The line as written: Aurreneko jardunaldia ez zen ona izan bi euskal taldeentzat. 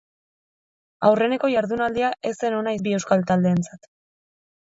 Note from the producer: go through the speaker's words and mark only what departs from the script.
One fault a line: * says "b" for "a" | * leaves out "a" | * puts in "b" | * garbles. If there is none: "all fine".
* leaves out "izan"